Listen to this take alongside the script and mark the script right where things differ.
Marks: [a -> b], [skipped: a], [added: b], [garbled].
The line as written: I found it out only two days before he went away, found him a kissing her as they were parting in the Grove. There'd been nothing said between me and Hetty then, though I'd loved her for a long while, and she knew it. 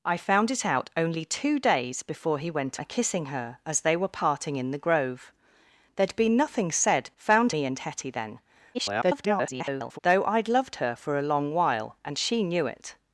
I found it out only two days before he went [skipped: away, found him] a kissing her as they were parting in the Grove. There'd been nothing said [between -> found] me and Hetty then, [garbled] though I'd loved her for a long while, and she knew it.